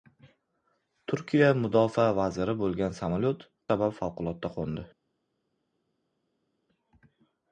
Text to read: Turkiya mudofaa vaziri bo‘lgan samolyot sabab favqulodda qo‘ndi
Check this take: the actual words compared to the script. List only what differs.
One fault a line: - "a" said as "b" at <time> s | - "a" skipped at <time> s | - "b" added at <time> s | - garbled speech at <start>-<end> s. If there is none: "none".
none